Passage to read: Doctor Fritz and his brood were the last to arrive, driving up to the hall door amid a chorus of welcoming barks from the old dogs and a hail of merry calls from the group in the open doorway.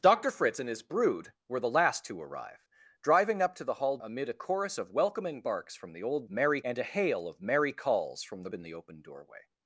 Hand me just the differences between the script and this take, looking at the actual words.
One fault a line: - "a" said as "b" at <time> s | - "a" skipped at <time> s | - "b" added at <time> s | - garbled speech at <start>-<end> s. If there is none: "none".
- "door" skipped at 4.0 s
- "dogs" said as "merry" at 6.3 s
- "group" skipped at 8.5 s